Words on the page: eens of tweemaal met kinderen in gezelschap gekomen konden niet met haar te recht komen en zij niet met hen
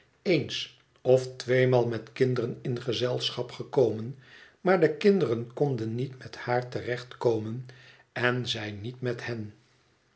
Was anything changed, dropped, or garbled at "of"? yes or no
no